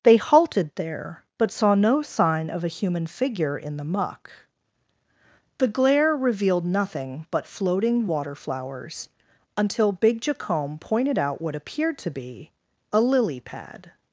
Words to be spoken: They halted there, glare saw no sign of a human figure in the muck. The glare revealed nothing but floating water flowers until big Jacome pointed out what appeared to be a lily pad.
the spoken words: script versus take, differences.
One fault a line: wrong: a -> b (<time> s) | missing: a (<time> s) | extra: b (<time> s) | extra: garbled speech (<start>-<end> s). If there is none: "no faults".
wrong: glare -> but (1.4 s)